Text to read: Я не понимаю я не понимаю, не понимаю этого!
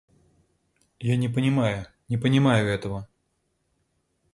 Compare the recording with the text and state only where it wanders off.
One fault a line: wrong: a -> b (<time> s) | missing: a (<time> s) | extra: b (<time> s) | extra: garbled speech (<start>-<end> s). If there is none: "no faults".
missing: я не понимаю (1.9 s)